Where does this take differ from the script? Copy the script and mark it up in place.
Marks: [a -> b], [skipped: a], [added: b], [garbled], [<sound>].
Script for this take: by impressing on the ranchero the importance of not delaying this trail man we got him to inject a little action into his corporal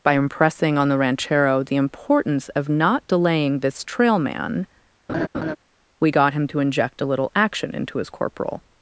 by impressing on the ranchero the importance of not delaying this trail man [laugh] we got him to inject a little action into his corporal